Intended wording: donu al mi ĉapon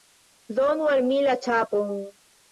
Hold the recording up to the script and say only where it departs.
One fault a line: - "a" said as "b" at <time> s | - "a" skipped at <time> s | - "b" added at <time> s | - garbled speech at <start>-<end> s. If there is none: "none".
- "la" added at 1.2 s